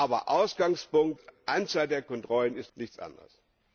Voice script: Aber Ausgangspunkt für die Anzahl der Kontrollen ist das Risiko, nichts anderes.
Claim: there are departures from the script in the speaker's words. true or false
true